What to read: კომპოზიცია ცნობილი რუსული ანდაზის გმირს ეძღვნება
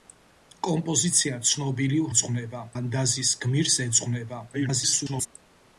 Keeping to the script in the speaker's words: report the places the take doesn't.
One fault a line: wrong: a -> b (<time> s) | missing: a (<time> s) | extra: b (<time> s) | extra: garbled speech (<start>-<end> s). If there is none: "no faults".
wrong: რუსული -> ეძღვნება (2.1 s)
extra: garbled speech (4.5-5.3 s)